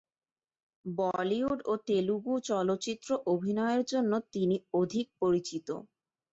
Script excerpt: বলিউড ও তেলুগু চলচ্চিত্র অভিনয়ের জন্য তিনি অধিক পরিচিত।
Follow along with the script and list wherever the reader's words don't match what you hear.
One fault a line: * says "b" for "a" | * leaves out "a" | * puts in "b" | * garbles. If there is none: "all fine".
all fine